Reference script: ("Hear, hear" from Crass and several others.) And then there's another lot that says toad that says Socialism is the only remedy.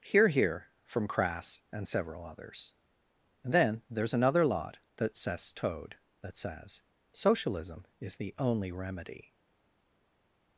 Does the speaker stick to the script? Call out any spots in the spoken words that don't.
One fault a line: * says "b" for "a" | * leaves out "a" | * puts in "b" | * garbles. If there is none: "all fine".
all fine